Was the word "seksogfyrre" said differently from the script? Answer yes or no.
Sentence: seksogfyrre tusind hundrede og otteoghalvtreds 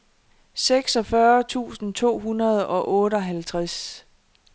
no